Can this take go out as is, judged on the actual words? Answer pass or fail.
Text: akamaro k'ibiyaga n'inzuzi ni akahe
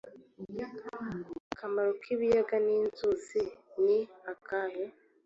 pass